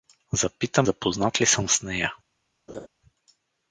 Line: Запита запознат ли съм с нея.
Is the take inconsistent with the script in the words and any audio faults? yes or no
yes